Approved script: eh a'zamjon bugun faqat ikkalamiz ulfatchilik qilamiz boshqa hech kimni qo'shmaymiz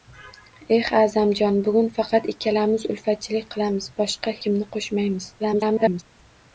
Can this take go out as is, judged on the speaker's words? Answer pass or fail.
fail